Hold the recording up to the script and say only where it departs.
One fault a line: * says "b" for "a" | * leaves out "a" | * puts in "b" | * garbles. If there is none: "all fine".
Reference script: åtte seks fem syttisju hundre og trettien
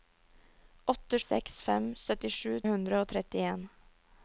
all fine